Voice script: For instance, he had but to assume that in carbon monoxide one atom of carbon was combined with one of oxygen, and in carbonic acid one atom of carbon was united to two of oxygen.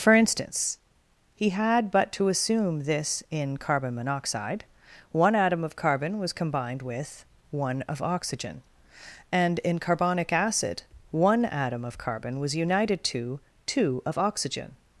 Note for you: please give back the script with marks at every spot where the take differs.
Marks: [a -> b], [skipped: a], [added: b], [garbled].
For instance, he had but to assume [that -> this] in carbon monoxide one atom of carbon was combined with one of oxygen, and in carbonic acid one atom of carbon was united to two of oxygen.